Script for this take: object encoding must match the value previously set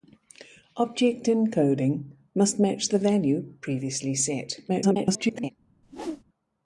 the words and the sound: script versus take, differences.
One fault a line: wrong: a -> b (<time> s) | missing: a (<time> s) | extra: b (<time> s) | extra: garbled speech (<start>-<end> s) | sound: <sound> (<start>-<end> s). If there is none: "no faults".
extra: garbled speech (4.7-5.5 s)
sound: whoosh (5.8-6.2 s)